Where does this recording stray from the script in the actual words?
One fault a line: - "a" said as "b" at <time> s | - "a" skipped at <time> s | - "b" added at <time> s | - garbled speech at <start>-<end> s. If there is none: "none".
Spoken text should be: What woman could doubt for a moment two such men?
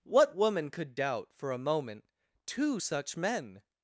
none